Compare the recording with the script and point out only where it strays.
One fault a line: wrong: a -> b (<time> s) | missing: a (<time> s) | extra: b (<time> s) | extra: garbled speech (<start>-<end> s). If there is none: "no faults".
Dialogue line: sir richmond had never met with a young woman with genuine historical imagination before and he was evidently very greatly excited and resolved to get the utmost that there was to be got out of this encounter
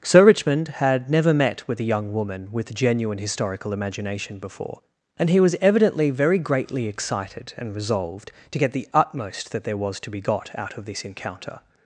no faults